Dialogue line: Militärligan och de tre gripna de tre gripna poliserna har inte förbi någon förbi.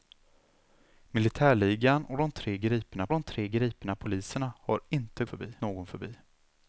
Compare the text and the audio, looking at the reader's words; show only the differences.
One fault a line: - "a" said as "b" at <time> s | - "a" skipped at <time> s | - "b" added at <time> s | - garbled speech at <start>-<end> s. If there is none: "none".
none